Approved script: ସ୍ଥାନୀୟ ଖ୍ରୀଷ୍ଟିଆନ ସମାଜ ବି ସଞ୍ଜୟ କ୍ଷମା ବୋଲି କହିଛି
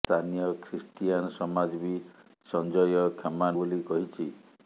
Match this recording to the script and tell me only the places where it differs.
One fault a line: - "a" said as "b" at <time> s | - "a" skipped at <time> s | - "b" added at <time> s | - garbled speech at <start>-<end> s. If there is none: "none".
none